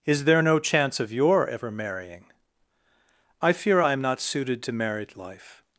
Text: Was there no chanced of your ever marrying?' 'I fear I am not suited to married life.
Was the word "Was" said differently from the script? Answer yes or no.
yes